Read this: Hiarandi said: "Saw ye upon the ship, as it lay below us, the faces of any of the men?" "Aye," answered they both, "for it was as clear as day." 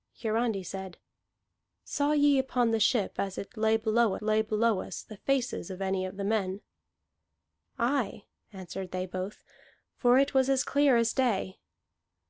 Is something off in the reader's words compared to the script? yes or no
yes